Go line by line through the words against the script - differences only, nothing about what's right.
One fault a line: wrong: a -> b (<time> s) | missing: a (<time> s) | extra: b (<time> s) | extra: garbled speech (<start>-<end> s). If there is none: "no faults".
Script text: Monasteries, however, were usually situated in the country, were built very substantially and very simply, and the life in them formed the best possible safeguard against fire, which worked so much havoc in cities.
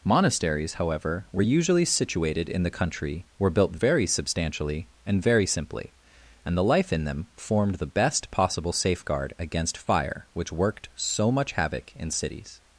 no faults